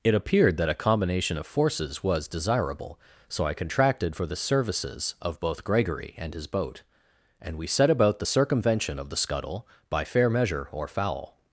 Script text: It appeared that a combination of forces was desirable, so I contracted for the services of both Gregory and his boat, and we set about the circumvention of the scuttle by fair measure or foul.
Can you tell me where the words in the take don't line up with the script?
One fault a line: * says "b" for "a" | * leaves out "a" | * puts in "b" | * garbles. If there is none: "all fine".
all fine